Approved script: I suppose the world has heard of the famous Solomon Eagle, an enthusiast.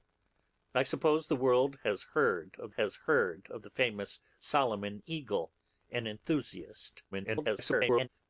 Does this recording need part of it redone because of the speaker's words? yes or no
yes